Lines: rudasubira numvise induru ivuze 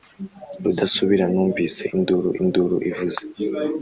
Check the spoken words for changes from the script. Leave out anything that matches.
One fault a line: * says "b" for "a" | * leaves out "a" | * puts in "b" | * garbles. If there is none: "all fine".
* puts in "induru"